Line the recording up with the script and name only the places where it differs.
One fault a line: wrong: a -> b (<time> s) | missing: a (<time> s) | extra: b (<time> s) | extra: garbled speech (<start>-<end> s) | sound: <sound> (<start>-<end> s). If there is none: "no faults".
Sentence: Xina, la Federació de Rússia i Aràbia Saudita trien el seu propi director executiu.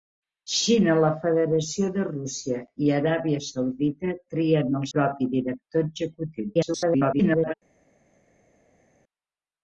missing: seu (4.9 s)
extra: garbled speech (6.5-7.5 s)